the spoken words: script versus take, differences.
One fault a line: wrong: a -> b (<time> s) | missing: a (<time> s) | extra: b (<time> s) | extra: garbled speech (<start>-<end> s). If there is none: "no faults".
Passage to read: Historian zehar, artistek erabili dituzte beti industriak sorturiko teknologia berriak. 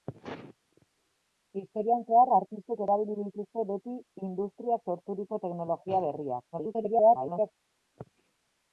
extra: garbled speech (6.5-7.5 s)